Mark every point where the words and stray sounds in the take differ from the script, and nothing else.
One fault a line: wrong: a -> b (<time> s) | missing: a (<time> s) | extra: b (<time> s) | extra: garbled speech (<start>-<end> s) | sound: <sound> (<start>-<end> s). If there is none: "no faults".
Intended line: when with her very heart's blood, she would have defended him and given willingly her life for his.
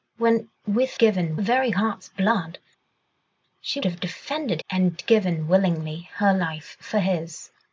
wrong: her -> given (1.0 s)
missing: would (3.8 s)
missing: him (4.6 s)